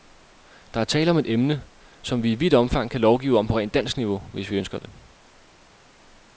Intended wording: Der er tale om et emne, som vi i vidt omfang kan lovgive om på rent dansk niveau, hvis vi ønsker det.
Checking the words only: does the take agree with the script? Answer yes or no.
yes